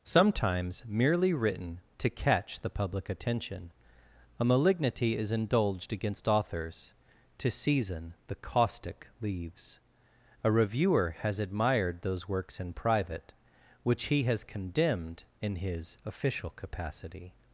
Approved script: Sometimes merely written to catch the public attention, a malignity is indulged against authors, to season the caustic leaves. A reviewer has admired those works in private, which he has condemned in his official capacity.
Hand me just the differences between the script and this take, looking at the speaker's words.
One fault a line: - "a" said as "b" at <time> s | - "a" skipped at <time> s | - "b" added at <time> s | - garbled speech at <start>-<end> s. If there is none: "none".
none